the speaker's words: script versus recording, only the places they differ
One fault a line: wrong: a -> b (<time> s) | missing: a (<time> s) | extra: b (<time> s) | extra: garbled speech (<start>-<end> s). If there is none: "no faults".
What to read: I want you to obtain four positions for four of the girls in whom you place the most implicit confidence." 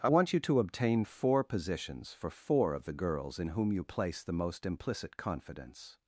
no faults